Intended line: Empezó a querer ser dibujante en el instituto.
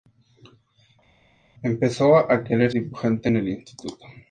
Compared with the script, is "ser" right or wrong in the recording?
wrong